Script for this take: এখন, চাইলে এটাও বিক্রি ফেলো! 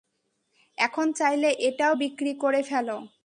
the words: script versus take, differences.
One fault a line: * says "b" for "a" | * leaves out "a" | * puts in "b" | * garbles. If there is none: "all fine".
* puts in "করে"